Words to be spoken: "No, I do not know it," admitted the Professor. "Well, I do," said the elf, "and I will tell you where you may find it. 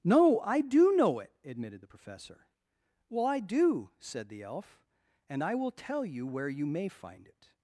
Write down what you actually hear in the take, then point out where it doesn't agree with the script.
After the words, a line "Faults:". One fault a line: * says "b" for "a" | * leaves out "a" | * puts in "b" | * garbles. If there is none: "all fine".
"No, I do know it," admitted the Professor. "Well, I do," said the elf, "and I will tell you where you may find it.
Faults:
* leaves out "not"